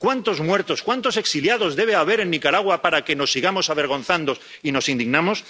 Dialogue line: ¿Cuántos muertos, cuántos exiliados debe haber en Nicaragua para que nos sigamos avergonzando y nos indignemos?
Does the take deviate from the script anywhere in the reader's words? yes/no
no